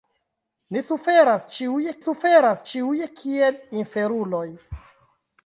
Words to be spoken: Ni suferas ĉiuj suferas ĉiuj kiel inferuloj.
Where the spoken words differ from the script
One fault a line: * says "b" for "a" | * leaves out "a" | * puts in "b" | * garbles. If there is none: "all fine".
all fine